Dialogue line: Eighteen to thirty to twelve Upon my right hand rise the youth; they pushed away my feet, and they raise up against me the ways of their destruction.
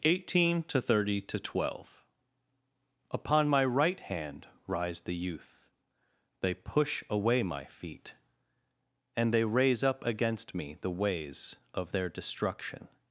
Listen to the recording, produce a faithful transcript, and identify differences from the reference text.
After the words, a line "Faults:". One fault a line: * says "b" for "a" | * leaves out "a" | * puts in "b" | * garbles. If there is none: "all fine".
Eighteen to thirty to twelve Upon my right hand rise the youth; they push away my feet, and they raise up against me the ways of their destruction.
Faults:
* says "push" for "pushed"